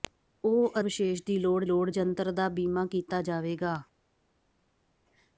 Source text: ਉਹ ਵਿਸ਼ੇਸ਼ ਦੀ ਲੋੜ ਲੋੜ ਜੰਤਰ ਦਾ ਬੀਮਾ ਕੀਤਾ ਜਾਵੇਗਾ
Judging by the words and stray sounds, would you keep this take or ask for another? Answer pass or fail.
pass